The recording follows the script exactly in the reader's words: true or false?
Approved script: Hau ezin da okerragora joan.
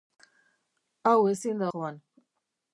false